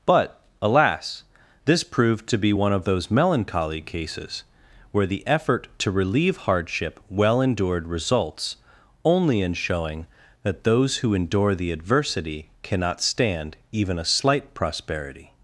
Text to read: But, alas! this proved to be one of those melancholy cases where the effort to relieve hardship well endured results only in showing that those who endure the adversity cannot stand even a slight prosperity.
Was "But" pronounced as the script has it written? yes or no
yes